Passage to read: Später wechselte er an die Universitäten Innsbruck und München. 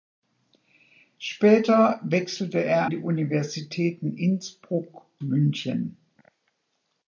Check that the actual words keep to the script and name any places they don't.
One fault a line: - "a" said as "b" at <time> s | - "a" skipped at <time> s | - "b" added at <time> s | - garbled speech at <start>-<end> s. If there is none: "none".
- "an" skipped at 2.9 s
- "und" skipped at 5.1 s